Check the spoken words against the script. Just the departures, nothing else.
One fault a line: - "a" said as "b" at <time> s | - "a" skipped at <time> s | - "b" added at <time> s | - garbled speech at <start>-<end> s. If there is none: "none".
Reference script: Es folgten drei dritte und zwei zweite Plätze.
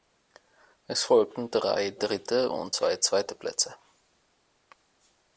none